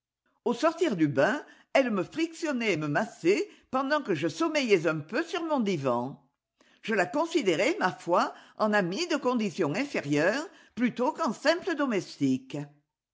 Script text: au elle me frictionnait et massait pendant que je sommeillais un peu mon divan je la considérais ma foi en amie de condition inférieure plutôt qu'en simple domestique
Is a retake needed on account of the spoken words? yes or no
yes